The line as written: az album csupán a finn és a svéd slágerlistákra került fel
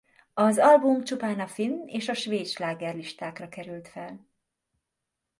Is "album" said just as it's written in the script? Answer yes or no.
yes